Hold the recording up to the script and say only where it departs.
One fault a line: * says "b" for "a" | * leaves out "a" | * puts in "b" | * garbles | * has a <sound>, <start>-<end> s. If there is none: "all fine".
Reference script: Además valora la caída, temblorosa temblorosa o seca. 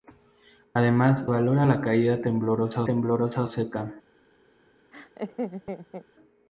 * has a laugh, 4.9-6.1 s